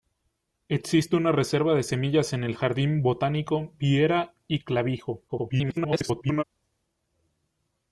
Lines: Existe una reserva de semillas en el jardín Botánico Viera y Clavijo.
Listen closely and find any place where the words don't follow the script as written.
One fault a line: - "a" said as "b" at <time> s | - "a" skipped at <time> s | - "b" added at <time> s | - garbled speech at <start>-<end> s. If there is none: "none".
- garbled speech at 5.3-6.4 s